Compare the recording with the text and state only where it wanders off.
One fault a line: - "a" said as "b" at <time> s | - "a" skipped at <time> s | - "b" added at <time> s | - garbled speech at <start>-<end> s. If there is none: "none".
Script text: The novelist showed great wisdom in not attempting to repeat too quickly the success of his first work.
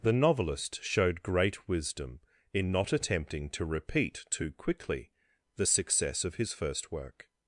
none